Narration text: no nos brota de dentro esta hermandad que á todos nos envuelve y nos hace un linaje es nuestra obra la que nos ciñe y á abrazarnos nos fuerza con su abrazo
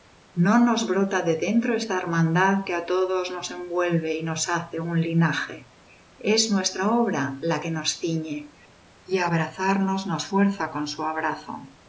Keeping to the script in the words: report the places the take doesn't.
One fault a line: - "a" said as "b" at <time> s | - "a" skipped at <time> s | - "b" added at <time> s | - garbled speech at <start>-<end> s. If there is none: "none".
none